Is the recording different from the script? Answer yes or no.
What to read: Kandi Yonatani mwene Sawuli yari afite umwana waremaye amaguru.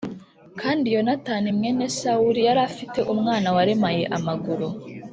no